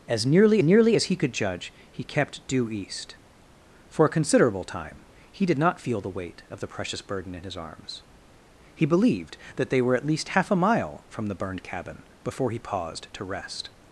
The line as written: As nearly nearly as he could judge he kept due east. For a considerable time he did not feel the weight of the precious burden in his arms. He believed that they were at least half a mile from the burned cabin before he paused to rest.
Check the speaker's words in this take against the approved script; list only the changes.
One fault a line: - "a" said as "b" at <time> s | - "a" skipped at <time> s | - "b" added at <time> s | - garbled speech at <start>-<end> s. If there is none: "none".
none